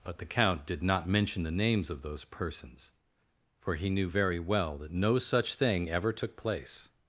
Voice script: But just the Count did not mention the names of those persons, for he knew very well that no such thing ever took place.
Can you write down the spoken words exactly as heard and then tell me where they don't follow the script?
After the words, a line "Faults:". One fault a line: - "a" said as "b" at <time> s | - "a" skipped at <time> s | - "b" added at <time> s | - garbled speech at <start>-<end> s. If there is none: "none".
But the Count did not mention the names of those persons, for he knew very well that no such thing ever took place.
Faults:
- "just" skipped at 0.2 s